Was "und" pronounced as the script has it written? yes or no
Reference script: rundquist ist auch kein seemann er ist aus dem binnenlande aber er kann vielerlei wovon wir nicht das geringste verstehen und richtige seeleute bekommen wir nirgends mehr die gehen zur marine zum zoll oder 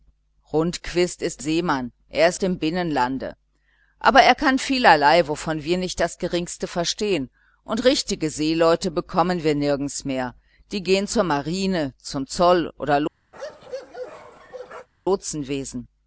yes